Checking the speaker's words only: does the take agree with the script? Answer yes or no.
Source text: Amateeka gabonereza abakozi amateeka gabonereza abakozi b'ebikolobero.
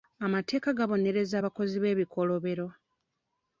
no